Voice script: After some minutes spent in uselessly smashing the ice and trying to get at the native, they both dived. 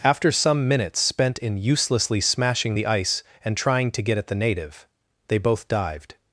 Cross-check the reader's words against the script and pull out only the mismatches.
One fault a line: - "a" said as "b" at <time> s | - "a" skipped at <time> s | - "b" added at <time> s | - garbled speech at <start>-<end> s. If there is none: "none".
none